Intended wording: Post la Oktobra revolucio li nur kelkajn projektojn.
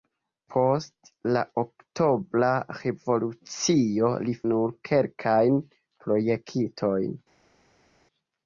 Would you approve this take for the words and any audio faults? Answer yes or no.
yes